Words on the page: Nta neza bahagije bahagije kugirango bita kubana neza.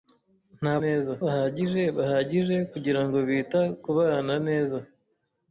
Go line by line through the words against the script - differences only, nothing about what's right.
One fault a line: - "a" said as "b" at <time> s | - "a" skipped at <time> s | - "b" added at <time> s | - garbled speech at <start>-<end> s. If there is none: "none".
none